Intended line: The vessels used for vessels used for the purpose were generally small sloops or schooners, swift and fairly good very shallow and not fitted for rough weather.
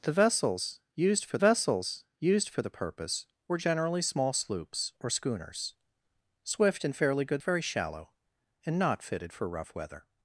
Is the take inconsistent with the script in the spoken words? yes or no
no